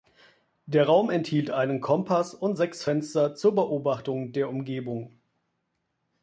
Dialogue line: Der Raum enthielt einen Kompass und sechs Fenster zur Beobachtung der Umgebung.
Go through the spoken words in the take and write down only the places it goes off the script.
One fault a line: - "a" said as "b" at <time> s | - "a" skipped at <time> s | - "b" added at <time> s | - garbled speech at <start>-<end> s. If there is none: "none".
none